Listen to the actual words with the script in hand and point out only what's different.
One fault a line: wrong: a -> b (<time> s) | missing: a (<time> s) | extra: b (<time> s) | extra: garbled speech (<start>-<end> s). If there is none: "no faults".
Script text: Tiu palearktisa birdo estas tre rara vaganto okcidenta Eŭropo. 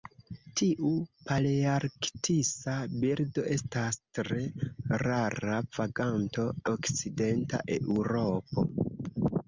no faults